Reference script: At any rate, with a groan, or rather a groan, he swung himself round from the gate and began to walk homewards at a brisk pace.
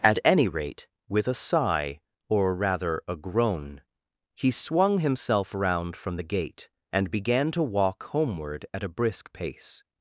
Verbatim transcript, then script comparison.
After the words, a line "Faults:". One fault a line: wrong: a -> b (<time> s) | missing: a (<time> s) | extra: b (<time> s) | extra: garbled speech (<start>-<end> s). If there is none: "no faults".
At any rate, with a sigh, or rather a groan, he swung himself round from the gate and began to walk homeward at a brisk pace.
Faults:
wrong: groan -> sigh (1.4 s)
wrong: homewards -> homeward (8.0 s)